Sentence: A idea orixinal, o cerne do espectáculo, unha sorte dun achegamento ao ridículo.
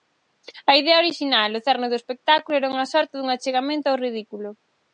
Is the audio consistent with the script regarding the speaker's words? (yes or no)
no